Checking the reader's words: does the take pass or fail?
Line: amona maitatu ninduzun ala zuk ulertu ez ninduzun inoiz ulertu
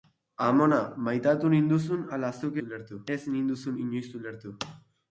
pass